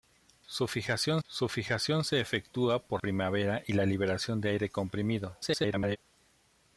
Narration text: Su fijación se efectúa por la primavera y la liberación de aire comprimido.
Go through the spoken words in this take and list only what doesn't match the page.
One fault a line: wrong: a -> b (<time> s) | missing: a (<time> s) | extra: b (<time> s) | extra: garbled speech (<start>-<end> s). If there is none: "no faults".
extra: su fijación (1.3 s)
missing: la (3.0 s)
extra: garbled speech (5.4-6.0 s)